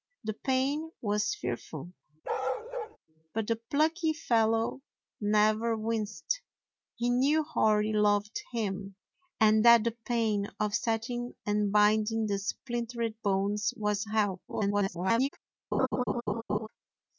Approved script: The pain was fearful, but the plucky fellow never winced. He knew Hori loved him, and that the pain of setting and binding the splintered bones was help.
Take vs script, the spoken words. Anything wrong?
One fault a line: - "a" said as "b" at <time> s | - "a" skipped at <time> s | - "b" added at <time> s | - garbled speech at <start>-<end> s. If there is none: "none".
- garbled speech at 14.5-15.3 s